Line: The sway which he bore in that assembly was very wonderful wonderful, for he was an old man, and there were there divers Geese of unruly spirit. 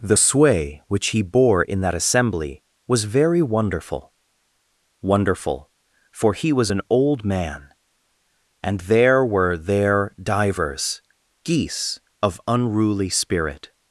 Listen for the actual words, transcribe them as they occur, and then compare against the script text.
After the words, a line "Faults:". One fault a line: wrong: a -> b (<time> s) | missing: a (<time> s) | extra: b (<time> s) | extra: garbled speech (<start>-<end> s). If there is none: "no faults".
The sway which he bore in that assembly was very wonderful wonderful, for he was an old man, and there were there divers Geese of unruly spirit.
Faults:
no faults